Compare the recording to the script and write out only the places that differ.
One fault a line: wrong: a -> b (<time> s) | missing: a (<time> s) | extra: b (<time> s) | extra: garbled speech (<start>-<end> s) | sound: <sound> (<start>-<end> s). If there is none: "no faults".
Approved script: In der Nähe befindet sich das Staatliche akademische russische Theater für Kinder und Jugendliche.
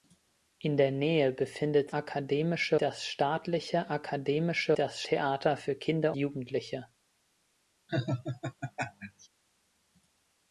wrong: sich -> akademische (1.9 s)
wrong: russische -> das (4.7 s)
missing: und (6.1 s)
sound: laugh (7.9-9.3 s)